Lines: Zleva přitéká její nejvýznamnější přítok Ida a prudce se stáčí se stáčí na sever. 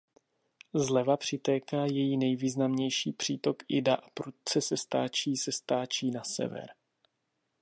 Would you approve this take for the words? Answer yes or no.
yes